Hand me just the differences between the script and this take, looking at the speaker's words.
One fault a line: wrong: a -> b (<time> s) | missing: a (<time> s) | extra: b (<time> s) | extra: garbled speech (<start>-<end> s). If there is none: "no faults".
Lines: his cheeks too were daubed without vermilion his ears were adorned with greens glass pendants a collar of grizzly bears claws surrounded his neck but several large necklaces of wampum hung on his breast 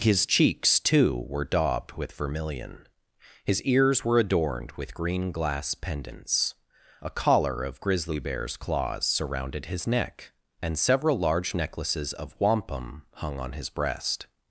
wrong: without -> with (1.9 s)
wrong: greens -> green (5.0 s)
wrong: but -> and (10.6 s)